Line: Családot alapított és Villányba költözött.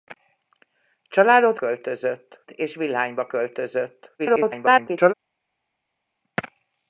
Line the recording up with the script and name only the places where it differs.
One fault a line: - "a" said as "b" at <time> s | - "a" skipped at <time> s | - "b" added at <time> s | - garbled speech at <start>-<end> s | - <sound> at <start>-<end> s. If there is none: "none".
- "alapított" said as "költözött" at 1.5 s
- garbled speech at 4.2-5.1 s